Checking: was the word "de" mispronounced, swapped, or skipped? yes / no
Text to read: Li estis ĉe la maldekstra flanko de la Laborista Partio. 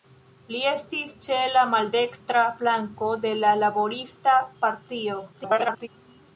no